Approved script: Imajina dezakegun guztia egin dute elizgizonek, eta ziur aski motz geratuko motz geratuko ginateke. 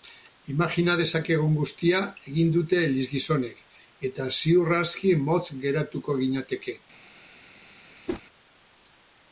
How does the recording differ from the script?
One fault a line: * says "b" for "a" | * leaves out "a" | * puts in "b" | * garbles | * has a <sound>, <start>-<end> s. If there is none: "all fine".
* leaves out "motz geratuko"
* has a whoosh, 8.1-8.2 s